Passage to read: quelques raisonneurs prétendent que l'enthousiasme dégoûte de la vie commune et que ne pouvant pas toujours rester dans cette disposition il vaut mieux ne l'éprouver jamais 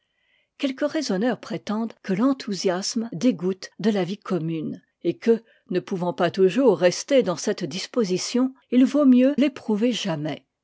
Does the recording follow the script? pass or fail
fail